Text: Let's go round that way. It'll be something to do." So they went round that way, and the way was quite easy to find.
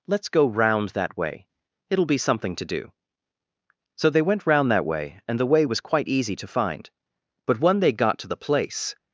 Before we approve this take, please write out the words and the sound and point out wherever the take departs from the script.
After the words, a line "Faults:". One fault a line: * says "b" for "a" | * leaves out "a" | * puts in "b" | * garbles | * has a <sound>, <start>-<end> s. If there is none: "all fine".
Let's go round that way. It'll be something to do." So they went round that way, and the way was quite easy to find. But when they got to the place
Faults:
* puts in "But when they got to the place"